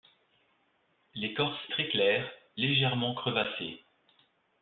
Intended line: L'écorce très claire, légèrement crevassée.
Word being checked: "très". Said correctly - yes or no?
yes